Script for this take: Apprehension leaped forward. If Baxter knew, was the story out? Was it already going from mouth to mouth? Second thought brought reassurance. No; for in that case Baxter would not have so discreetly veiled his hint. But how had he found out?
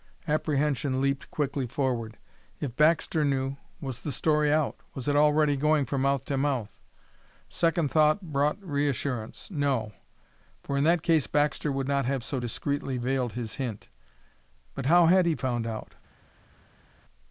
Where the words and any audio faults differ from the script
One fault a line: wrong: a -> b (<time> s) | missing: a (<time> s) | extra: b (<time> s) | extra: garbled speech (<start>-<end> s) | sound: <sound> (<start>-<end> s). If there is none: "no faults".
extra: quickly (1.3 s)